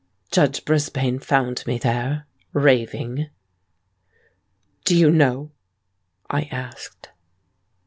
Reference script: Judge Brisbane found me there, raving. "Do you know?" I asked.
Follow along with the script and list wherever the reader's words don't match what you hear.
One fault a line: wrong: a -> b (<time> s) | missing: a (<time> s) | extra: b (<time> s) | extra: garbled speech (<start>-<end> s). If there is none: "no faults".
no faults